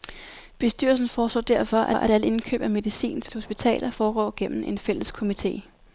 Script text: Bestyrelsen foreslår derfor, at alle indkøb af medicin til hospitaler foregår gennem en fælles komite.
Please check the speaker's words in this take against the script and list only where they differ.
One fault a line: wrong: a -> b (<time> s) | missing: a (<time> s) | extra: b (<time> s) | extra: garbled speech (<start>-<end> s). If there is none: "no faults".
extra: at (1.9 s)
extra: til (3.3 s)